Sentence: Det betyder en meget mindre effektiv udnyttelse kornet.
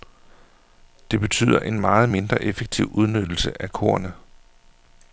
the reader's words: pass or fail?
fail